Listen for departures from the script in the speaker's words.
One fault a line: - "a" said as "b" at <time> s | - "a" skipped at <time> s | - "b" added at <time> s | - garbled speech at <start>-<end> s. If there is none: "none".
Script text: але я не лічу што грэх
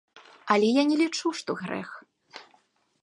none